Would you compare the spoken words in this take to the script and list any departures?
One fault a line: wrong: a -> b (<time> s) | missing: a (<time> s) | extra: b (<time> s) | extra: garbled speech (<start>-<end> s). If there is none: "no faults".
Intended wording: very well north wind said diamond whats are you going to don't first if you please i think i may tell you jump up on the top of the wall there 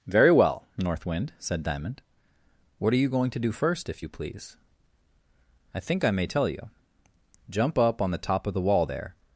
wrong: whats -> what (2.8 s)
wrong: don't -> do (3.4 s)